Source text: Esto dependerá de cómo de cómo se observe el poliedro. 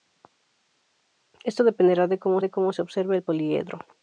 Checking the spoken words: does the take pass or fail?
pass